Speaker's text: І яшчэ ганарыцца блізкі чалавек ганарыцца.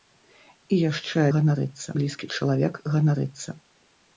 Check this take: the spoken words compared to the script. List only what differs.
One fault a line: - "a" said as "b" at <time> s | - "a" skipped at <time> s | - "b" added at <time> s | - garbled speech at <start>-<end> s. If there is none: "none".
none